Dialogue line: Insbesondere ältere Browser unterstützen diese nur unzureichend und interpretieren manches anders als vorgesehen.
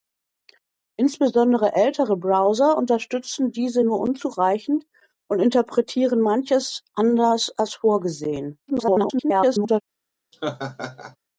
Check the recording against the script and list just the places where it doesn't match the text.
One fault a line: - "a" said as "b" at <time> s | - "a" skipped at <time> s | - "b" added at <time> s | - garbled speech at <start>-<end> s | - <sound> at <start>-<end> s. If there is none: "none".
- garbled speech at 8.7-9.8 s
- laugh at 10.3-11.2 s